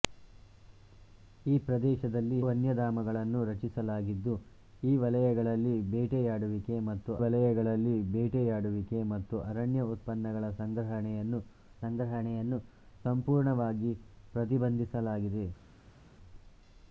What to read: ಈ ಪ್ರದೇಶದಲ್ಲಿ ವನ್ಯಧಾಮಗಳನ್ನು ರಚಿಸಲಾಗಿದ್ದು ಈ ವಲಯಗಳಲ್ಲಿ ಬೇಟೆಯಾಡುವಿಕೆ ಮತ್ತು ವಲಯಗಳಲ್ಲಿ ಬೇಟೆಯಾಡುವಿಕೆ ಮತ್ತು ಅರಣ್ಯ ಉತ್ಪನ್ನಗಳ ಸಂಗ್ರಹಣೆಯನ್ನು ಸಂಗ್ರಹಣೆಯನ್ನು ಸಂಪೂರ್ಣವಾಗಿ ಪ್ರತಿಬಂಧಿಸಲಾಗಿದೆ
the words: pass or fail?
pass